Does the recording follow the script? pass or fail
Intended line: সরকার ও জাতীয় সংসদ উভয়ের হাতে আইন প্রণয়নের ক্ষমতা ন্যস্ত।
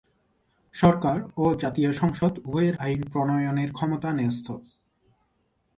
fail